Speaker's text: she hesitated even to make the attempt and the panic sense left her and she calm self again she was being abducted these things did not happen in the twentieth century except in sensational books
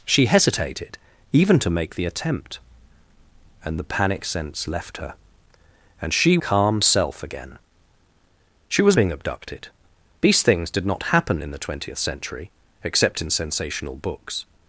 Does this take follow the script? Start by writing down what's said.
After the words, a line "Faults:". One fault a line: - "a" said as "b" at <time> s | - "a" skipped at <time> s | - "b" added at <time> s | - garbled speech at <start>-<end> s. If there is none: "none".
she hesitated even to make the attempt and the panic sense left her and she calm self again she was being abducted these things did not happen in the twentieth century except in sensational books
Faults:
none